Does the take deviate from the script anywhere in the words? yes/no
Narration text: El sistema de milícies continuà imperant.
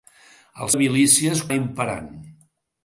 yes